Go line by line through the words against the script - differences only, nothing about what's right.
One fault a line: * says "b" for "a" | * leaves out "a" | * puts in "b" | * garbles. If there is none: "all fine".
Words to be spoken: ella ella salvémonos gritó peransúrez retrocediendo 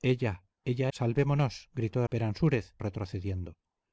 all fine